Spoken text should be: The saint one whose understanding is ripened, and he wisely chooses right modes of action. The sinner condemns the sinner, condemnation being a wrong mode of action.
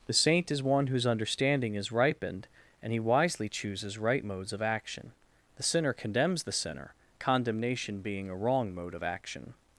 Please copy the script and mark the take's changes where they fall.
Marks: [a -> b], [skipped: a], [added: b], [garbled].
The saint [added: is] one whose understanding is ripened, and he wisely chooses right modes of action. The sinner condemns the sinner, condemnation being a wrong mode of action.